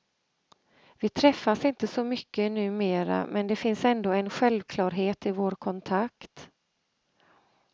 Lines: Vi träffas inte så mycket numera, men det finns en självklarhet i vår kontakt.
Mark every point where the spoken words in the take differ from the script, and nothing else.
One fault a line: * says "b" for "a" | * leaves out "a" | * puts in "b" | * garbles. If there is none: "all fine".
* puts in "ändå"